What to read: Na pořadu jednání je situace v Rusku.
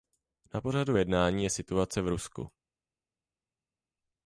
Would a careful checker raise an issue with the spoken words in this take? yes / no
no